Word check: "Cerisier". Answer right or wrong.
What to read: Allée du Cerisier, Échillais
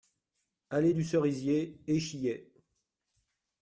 right